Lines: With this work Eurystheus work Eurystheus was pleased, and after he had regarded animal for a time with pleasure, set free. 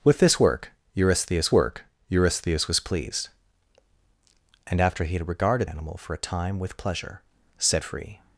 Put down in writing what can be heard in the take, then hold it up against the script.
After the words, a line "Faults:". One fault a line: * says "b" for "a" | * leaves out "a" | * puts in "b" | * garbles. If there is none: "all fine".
With this work Eurystheus work Eurystheus was pleased, and after he had regarded animal for a time with pleasure, set free.
Faults:
all fine